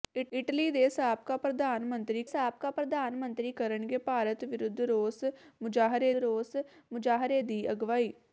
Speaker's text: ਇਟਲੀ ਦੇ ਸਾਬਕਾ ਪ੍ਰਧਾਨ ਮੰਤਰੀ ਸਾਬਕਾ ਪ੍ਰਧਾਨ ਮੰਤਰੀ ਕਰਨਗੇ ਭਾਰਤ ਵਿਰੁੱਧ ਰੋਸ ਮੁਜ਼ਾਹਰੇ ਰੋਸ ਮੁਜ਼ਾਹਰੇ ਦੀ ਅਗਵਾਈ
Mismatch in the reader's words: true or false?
false